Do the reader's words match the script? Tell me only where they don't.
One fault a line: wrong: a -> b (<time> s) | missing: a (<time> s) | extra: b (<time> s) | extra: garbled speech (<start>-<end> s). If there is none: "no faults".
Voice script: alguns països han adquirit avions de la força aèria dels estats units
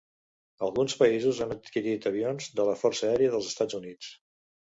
no faults